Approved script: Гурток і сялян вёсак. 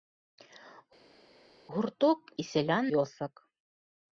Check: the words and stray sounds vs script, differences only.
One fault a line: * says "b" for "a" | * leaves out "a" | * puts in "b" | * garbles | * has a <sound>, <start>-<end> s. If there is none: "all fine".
all fine